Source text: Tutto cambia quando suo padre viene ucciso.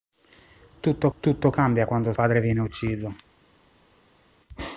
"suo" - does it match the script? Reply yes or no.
no